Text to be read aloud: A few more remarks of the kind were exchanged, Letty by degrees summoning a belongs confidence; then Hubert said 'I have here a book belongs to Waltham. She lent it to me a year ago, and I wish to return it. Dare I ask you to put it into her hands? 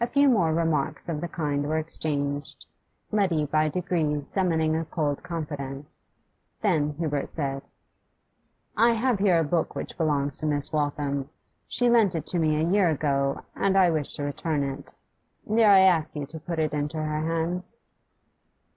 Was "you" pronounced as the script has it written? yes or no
yes